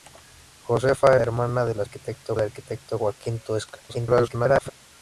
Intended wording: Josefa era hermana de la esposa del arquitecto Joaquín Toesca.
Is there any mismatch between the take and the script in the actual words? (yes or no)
yes